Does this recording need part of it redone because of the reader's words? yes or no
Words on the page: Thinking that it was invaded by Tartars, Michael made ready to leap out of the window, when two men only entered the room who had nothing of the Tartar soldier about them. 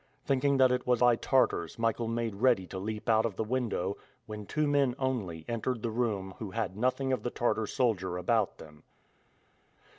yes